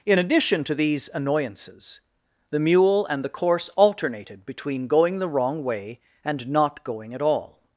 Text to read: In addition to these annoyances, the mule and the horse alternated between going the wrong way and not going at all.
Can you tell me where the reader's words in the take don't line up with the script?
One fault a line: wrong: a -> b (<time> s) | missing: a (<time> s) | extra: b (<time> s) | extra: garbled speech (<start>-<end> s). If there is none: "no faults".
wrong: horse -> course (3.3 s)